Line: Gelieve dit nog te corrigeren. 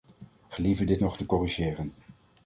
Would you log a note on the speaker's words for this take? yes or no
no